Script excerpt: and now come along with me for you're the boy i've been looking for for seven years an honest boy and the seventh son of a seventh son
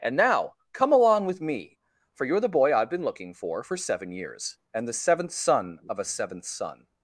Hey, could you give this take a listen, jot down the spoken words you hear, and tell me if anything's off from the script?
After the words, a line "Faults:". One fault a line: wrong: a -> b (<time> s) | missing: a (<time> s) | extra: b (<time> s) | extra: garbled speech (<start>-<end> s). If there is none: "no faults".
and now come along with me for you're the boy i've been looking for for seven years and the seventh son of a seventh son
Faults:
missing: an honest boy (4.6 s)